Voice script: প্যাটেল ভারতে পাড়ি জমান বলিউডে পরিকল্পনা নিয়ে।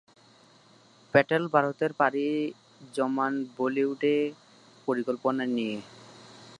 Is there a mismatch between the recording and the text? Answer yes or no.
no